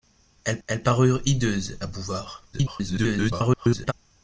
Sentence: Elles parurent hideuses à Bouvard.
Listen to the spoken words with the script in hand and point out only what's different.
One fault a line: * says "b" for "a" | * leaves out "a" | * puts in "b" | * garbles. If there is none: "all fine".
* puts in "elles"
* garbles